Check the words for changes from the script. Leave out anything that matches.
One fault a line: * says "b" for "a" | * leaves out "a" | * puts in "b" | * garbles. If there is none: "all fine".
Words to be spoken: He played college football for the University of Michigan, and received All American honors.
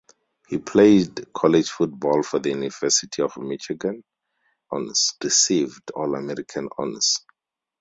* says "honors" for "and"